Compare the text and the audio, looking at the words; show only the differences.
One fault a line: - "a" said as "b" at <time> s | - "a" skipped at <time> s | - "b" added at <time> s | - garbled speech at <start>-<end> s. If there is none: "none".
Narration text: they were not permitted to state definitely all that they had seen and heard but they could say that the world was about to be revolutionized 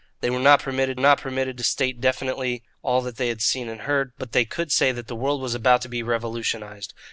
- "not permitted" added at 1.0 s